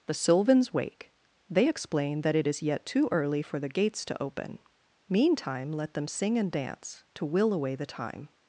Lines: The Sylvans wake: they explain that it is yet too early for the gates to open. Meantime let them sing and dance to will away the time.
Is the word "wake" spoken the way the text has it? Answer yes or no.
yes